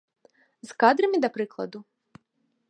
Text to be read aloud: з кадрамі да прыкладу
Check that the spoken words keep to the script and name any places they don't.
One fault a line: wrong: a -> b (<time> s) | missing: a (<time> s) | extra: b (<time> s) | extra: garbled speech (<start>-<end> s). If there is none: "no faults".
no faults